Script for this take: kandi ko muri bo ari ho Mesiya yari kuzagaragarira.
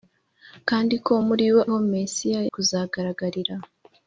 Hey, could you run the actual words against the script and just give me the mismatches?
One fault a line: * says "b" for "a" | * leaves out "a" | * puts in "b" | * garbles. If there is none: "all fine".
* leaves out "ari"
* leaves out "yari"